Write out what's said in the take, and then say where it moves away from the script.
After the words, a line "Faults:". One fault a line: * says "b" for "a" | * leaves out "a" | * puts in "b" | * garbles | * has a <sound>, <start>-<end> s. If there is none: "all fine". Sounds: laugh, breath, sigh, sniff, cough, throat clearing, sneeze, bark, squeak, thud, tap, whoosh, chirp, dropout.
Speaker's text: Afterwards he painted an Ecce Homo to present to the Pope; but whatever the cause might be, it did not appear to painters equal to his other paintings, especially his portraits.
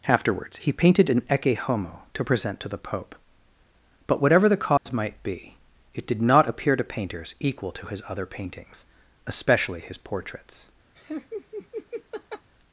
Afterwards he painted an Ecce Homo to present to the Pope; but whatever the cause might be, it did not appear to painters equal to his other paintings, especially his portraits.
Faults:
* has a dropout, 4.8-4.9 s
* has a laugh, 11.0-12.5 s